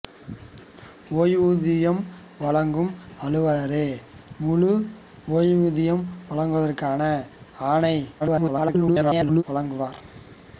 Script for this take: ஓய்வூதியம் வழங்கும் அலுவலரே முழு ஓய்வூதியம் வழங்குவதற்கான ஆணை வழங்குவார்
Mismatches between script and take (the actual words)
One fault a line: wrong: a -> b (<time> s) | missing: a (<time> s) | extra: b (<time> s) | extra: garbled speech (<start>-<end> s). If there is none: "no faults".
extra: garbled speech (8.2-9.4 s)